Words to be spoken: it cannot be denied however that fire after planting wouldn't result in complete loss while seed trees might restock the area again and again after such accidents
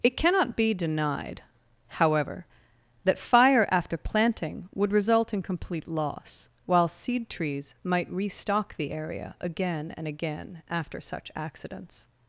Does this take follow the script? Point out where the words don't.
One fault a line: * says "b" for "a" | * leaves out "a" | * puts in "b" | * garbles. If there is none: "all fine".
* says "would" for "wouldn't"